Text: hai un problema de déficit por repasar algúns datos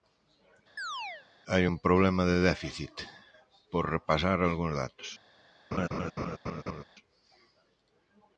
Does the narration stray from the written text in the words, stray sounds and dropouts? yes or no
yes